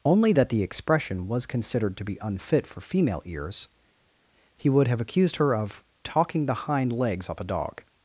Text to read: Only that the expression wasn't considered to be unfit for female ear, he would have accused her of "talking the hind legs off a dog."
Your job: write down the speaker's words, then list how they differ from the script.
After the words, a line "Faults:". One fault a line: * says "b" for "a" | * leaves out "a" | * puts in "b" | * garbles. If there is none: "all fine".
Only that the expression was considered to be unfit for female ears, he would have accused her of "talking the hind legs off a dog."
Faults:
* says "was" for "wasn't"
* says "ears" for "ear"